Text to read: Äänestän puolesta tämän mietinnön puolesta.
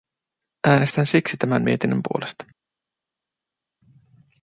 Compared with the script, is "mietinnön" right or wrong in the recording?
right